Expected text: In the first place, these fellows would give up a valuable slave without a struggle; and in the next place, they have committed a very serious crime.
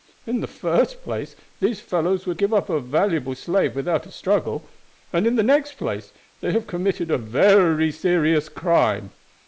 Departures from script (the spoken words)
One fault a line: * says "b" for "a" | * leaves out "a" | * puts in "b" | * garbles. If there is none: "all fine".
all fine